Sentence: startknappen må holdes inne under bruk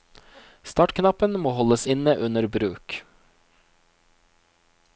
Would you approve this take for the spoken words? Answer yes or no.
yes